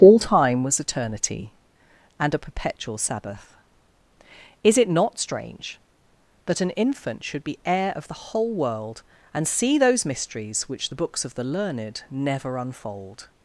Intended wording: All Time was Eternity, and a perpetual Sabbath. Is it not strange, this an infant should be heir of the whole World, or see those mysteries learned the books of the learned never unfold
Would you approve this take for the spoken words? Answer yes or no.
no